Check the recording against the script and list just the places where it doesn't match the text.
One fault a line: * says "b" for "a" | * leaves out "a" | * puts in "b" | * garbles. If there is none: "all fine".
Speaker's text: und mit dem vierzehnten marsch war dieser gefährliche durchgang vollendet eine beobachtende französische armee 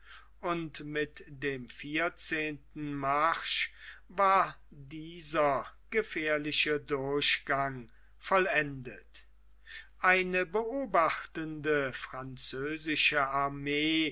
all fine